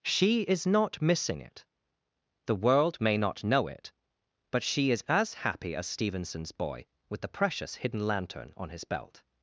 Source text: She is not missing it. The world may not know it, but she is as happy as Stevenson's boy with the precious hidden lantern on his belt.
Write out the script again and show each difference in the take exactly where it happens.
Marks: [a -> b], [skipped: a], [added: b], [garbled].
She is not missing it. The world may not know it, but she is as happy as Stevenson's boy with the precious hidden lantern on his belt.